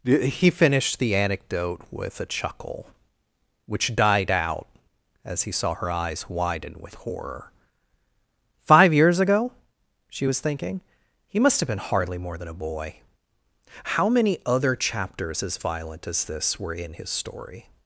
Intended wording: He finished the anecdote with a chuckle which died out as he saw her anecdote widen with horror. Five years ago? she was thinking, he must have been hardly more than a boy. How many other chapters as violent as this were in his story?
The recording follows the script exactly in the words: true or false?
false